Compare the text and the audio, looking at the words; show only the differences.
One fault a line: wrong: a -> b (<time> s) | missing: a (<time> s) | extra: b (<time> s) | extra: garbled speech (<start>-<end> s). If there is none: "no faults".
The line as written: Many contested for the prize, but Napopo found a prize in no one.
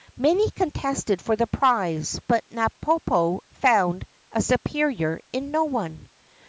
wrong: prize -> superior (4.4 s)